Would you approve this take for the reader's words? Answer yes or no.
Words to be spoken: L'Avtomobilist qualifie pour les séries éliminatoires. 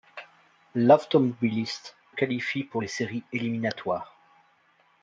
yes